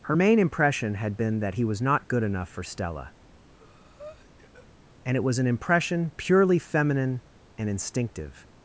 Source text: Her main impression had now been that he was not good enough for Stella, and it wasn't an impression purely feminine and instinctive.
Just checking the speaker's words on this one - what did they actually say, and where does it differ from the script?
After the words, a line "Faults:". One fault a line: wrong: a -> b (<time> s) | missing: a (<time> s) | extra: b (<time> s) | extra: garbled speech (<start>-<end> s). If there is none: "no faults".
Her main impression had been that he was not good enough for Stella, and it was an impression purely feminine and instinctive.
Faults:
missing: now (1.2 s)
wrong: wasn't -> was (5.2 s)